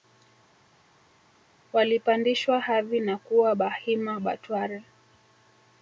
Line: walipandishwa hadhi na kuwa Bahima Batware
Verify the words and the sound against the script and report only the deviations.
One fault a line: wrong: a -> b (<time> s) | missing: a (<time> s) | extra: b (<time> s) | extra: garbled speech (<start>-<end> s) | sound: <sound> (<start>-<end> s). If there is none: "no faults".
no faults